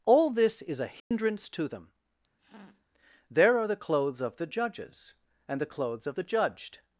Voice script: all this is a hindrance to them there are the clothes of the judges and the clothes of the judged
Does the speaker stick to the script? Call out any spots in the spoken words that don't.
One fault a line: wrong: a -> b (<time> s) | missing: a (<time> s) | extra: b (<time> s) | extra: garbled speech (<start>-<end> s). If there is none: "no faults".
no faults